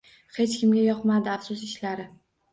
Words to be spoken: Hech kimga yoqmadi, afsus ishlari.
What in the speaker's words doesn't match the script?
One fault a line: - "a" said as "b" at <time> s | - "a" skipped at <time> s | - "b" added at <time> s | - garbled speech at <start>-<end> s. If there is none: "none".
none